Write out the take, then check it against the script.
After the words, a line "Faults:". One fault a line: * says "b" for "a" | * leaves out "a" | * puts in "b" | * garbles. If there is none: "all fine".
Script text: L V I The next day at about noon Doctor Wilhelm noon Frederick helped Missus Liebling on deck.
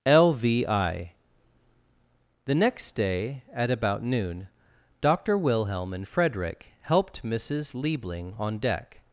L V I The next day at about noon Doctor Wilhelm and Frederick helped Missus Liebling on deck.
Faults:
* says "and" for "noon"